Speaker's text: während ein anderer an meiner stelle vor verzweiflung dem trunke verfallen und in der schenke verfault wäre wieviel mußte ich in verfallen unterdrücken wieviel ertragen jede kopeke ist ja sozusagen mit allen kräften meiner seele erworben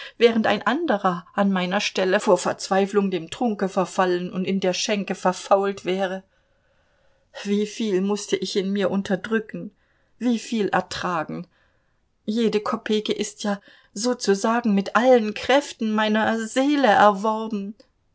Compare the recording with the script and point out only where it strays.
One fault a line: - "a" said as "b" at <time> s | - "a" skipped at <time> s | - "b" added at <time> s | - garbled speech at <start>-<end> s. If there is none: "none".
- "verfallen" said as "mir" at 8.7 s